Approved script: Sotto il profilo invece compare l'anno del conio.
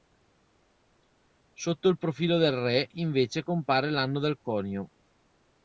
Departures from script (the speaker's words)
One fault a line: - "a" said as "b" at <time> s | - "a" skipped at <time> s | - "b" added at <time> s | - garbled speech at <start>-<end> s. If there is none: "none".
- "del re" added at 2.4 s